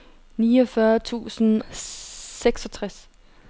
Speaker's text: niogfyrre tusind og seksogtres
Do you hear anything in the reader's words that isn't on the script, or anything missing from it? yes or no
yes